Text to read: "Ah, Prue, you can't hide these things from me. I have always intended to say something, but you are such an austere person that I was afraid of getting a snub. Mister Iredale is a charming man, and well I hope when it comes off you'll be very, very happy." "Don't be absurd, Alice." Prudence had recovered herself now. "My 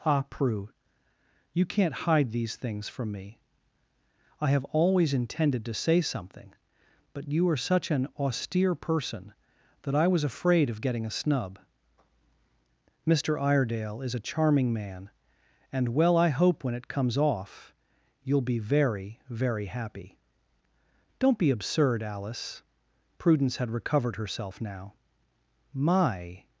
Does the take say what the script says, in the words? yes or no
yes